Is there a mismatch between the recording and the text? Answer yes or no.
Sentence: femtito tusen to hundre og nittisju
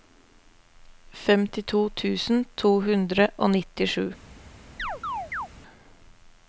no